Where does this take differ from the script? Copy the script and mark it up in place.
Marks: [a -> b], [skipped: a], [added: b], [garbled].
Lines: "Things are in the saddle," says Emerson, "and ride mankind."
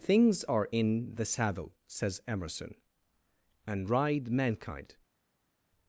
"Things are in the saddle," says Emerson, "and ride mankind."